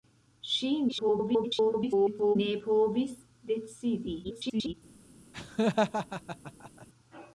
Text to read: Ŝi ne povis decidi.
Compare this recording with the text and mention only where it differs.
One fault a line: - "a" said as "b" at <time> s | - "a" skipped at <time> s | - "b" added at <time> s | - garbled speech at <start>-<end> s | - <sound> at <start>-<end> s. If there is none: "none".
- garbled speech at 0.9-2.4 s
- garbled speech at 4.2-4.7 s
- laugh at 5.3-6.9 s